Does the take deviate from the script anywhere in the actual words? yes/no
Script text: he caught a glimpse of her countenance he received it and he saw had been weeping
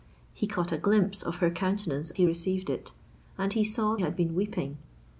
no